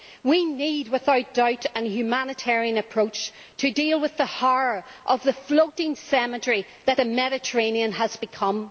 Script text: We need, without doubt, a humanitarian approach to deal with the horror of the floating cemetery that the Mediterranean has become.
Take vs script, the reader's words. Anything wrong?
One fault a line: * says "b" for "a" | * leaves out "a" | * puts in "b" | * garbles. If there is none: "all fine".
all fine